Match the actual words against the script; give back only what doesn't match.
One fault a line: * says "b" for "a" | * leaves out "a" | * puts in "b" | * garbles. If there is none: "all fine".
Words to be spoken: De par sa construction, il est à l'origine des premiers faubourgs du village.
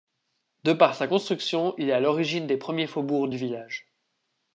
all fine